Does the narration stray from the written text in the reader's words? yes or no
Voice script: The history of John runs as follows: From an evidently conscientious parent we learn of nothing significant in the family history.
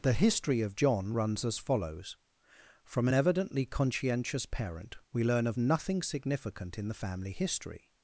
no